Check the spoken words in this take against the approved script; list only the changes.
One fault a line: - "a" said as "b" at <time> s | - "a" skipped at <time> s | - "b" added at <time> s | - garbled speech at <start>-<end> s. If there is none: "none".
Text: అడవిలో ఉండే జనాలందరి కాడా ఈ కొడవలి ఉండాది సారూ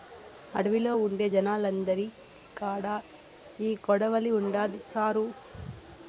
none